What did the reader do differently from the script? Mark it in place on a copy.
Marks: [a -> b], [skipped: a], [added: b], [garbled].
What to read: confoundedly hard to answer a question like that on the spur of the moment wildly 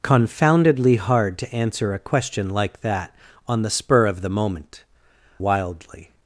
confoundedly hard to answer a question like that on the spur of the moment wildly